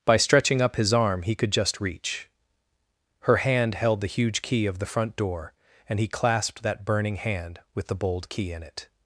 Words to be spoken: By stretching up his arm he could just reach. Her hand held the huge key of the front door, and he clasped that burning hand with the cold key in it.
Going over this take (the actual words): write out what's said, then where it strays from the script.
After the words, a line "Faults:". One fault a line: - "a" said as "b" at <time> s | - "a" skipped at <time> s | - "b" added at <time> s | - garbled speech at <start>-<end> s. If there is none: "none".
By stretching up his arm he could just reach. Her hand held the huge key of the front door, and he clasped that burning hand with the bold key in it.
Faults:
- "cold" said as "bold" at 8.0 s